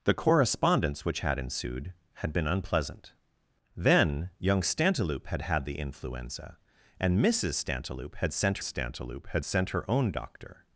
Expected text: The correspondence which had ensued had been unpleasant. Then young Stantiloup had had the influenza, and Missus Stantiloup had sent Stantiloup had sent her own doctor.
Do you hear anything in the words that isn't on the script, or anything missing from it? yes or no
no